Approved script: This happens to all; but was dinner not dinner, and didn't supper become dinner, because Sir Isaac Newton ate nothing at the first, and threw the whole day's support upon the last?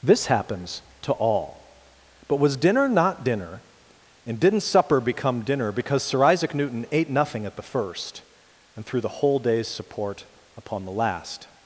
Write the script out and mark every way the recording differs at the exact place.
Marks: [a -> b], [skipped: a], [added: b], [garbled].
This happens to all; but was dinner not dinner, and didn't supper become dinner, because Sir Isaac Newton ate nothing at the first, and threw the whole day's support upon the last?